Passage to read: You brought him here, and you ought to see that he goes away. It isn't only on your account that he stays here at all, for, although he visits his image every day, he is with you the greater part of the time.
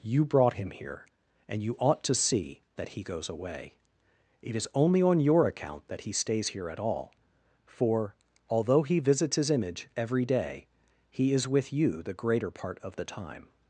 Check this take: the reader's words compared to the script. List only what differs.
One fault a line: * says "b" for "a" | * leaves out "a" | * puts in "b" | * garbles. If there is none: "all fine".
* says "is" for "isn't"